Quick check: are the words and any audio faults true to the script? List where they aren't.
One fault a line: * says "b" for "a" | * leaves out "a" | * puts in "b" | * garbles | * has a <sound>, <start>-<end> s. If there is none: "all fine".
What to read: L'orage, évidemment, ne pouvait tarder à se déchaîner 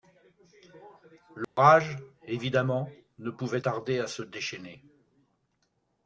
* has a dropout, 1.4-1.6 s